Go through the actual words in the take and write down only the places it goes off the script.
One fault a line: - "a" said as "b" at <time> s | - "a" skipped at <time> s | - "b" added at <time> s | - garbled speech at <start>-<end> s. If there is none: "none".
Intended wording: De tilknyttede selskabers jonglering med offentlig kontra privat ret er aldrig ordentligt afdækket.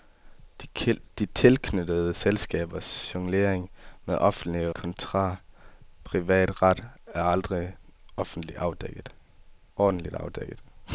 none